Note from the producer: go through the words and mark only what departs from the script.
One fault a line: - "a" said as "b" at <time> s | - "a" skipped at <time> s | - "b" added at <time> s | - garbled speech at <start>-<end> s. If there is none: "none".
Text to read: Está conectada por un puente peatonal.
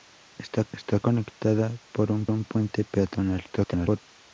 - "está" added at 0.7 s
- "un" added at 2.3 s
- garbled speech at 3.5-4.0 s